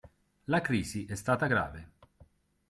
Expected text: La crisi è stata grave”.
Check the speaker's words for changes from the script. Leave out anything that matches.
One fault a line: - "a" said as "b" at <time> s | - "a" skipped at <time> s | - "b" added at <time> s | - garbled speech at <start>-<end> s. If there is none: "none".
none